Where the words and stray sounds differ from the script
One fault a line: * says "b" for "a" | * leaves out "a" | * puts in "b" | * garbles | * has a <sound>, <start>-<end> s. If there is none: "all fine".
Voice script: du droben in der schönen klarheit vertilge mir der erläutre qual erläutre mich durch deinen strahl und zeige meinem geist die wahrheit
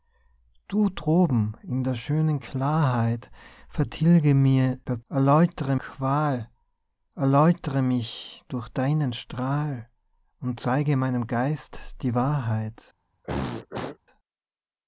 * has a throat clearing, 13.2-14.0 s